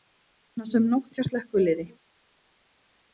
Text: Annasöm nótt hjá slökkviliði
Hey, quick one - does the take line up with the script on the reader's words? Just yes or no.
yes